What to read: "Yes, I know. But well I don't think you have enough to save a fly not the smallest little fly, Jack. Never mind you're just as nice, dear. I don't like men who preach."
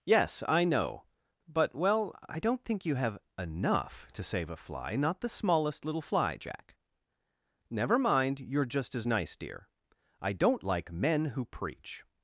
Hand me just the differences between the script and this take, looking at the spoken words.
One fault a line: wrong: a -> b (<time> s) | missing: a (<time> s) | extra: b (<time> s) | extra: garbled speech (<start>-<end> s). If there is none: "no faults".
no faults